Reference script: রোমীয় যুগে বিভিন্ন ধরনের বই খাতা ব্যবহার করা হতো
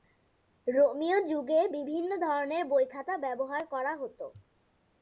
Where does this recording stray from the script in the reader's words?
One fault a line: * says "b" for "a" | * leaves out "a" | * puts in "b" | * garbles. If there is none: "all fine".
all fine